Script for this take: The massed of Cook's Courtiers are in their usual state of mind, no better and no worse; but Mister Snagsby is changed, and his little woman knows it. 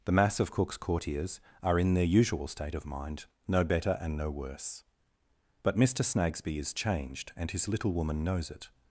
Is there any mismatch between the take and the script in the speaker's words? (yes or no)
yes